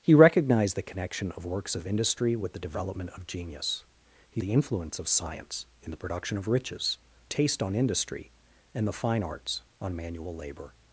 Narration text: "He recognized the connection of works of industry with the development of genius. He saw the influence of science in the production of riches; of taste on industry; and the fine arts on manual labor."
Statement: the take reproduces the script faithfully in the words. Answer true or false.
false